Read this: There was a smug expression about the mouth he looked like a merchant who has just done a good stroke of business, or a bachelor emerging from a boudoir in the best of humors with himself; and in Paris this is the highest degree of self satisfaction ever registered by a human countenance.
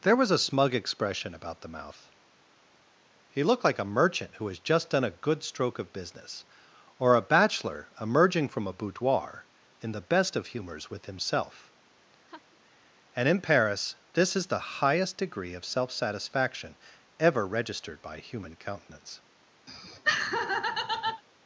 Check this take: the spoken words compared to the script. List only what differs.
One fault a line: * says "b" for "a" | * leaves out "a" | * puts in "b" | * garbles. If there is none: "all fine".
* leaves out "a"